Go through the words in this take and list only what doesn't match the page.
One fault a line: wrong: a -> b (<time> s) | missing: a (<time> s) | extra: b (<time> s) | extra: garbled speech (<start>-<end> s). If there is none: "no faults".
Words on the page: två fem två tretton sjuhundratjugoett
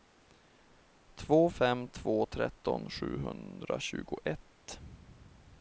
no faults